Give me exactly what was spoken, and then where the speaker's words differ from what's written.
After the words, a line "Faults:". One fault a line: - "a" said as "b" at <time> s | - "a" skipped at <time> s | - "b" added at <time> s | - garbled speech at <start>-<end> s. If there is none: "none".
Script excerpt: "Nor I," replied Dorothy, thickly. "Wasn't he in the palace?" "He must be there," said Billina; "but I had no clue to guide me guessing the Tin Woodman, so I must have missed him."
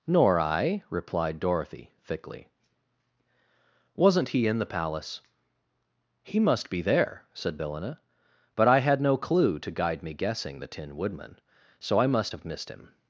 "Nor I," replied Dorothy, thickly. "Wasn't he in the palace?" "He must be there," said Billina; "but I had no clue to guide me guessing the Tin Woodman, so I must have missed him."
Faults:
none